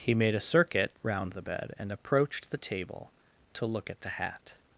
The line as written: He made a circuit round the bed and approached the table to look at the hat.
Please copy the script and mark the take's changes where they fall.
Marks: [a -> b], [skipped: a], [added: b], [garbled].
He made a circuit round the bed and approached the table to look at the hat.